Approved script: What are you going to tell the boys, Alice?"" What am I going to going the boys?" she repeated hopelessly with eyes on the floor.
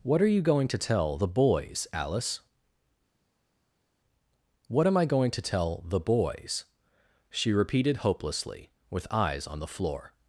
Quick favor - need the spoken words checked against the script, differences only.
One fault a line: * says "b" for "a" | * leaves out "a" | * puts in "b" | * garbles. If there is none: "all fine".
* says "tell" for "going"